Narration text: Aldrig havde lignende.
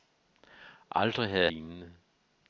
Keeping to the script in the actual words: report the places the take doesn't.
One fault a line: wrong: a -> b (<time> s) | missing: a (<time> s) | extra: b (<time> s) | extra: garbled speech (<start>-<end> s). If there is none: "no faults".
no faults